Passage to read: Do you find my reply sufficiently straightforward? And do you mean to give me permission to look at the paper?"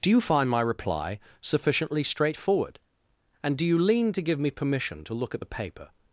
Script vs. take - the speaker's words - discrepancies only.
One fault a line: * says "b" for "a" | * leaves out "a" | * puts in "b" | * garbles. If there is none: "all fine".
* says "lean" for "mean"